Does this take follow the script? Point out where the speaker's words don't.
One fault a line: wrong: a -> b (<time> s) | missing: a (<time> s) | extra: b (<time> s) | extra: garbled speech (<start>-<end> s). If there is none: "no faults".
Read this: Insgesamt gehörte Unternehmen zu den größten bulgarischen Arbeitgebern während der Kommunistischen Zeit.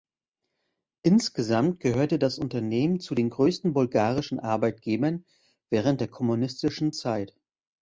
extra: das (2.2 s)